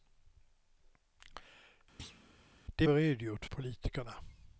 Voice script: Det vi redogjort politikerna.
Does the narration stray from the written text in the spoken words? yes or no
no